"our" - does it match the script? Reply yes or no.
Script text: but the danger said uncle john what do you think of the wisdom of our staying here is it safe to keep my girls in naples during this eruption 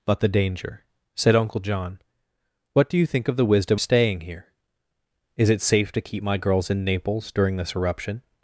no